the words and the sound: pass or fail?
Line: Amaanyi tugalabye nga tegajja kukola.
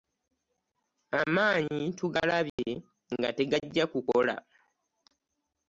fail